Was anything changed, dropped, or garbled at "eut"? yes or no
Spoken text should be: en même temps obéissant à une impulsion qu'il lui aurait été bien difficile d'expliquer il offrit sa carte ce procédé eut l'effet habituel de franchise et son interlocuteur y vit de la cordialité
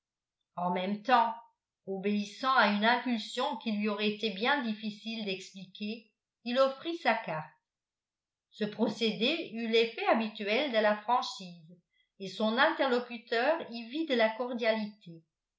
no